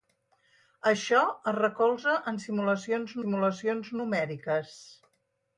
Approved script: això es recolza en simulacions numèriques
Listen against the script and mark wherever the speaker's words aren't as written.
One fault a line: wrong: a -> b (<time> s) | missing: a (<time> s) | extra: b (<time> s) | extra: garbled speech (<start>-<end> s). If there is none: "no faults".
extra: simulacions (3.2 s)